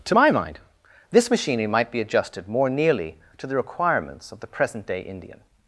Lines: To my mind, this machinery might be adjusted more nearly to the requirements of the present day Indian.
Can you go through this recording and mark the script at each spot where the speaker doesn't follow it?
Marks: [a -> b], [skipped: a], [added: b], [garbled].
To my mind, this machinery might be adjusted more nearly to the requirements of the present day Indian.